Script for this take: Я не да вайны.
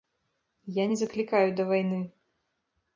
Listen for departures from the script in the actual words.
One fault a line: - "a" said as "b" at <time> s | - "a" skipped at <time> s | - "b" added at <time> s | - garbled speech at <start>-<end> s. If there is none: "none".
- "заклікаю" added at 1.0 s